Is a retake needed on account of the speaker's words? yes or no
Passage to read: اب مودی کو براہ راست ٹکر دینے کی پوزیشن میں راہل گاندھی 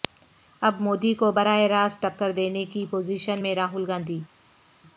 no